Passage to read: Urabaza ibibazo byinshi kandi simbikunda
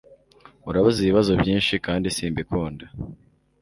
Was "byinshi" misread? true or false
false